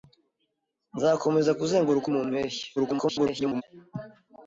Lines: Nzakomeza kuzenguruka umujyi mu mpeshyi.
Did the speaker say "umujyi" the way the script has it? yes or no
no